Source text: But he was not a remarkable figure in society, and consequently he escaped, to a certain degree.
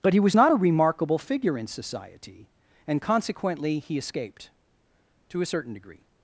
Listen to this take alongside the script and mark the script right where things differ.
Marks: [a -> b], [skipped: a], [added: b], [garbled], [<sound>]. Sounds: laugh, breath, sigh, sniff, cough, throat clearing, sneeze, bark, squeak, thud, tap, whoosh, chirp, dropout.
But he was not a remarkable figure in society, and consequently he escaped, to a certain degree.